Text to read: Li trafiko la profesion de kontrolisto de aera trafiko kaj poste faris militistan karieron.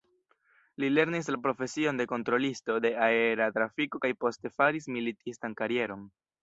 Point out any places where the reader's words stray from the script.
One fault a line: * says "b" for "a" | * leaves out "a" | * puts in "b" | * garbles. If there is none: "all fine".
* says "lernis" for "trafiko"